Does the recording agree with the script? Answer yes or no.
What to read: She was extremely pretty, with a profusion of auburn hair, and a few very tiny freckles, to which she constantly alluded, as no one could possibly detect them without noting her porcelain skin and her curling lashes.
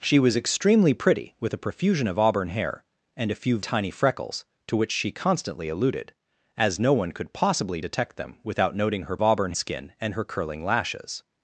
no